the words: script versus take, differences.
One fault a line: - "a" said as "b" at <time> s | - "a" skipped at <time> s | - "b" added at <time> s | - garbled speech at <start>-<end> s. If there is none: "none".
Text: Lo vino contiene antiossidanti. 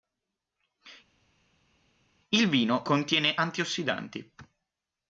- "Lo" said as "Il" at 2.3 s